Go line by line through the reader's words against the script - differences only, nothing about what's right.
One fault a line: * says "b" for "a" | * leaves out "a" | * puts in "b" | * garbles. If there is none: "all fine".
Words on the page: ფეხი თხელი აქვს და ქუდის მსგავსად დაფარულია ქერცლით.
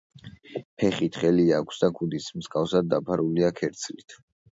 all fine